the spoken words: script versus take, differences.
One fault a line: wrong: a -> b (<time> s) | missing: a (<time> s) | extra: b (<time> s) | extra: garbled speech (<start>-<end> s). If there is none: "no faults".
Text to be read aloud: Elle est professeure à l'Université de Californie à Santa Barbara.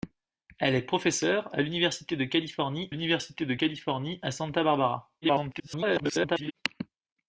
extra: l'Université de Californie (2.9 s)
extra: garbled speech (5.2-6.5 s)